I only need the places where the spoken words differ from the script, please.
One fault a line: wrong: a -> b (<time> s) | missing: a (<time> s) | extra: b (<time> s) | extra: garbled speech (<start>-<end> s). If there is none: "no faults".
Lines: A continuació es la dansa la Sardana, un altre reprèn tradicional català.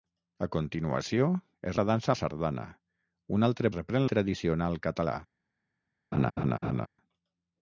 no faults